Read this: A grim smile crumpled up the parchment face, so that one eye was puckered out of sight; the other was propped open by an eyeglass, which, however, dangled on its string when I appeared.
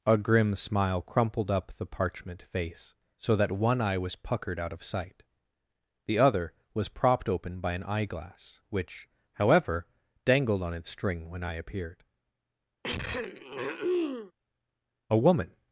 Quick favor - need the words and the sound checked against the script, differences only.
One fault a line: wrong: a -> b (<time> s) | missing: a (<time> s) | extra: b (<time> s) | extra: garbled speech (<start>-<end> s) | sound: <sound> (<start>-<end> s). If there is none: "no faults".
sound: throat clearing (12.8-14.3 s)
extra: A woman (15.1 s)